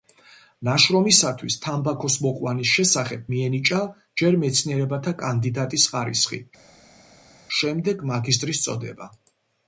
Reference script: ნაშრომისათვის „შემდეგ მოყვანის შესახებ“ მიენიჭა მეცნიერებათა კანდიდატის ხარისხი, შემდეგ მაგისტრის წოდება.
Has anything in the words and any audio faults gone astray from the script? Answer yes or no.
yes